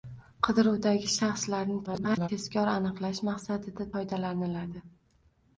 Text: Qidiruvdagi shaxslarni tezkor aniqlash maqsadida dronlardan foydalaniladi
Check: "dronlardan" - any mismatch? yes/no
yes